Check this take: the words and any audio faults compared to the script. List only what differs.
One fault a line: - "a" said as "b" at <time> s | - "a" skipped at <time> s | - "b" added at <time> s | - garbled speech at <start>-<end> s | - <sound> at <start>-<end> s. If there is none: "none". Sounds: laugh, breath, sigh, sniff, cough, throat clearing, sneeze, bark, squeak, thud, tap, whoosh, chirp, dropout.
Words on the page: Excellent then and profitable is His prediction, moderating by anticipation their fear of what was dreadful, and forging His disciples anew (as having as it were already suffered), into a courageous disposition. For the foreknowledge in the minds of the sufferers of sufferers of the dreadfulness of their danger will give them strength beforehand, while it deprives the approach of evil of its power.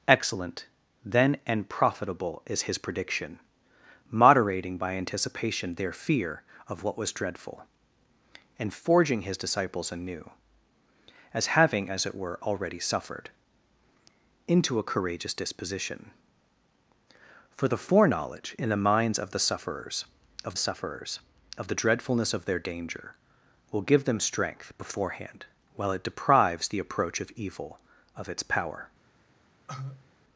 - cough at 29.7-30.1 s